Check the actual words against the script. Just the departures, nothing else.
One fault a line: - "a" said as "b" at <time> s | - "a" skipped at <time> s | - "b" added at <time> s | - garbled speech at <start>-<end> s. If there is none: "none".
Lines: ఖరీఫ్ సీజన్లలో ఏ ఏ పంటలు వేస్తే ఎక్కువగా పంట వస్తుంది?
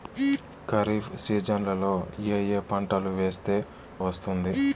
- "ఎక్కువగా పంట" skipped at 3.6 s